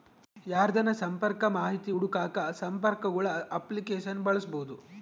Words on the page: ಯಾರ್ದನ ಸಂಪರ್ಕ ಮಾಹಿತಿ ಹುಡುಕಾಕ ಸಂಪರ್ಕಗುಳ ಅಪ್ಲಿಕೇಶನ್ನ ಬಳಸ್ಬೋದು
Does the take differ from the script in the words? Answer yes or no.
no